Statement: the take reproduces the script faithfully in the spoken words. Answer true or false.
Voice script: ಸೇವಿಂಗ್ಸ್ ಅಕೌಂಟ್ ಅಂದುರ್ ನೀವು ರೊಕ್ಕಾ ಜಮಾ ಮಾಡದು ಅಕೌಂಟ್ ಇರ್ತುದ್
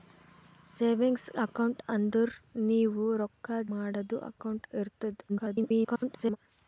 false